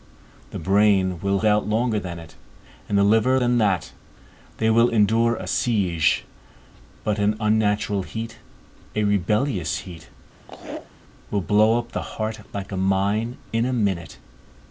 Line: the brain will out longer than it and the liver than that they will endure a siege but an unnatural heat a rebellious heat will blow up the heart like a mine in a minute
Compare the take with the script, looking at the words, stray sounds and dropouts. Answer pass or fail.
fail